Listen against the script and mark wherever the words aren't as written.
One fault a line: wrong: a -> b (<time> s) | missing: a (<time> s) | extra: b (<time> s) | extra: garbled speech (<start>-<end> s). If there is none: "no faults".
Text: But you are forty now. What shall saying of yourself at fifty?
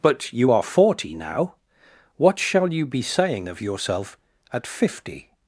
extra: you be (2.7 s)